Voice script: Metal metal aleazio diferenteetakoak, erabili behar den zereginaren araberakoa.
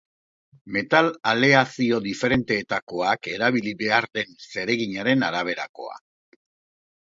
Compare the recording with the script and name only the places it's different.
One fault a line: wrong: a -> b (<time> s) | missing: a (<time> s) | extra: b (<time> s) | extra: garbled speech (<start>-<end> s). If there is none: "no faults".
missing: metal (1.1 s)